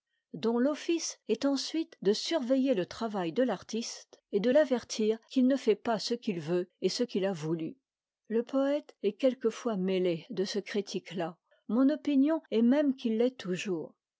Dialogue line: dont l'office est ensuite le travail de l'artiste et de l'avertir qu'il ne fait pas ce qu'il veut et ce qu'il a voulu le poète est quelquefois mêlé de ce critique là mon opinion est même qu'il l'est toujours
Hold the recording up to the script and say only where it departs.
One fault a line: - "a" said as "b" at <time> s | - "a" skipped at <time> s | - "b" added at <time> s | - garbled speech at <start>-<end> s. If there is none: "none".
- "de surveiller" added at 2.0 s